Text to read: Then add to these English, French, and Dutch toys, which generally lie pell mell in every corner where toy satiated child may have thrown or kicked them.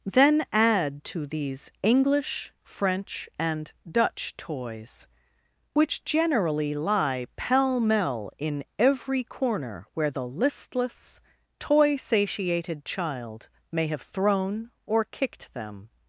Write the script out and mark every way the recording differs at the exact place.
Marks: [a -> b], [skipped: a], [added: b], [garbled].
Then add to these English, French, and Dutch toys, which generally lie pell mell in every corner where [added: the listless] toy satiated child may have thrown or kicked them.